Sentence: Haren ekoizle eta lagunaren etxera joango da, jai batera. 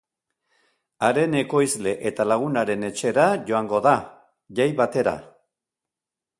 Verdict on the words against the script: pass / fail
pass